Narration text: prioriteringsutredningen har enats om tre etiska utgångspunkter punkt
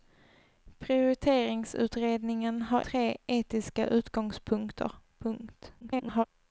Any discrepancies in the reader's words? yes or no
yes